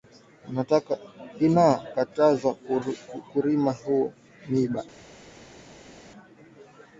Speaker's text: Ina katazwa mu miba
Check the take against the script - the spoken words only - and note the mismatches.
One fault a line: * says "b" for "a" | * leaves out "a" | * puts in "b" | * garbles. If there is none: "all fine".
* puts in "kurima"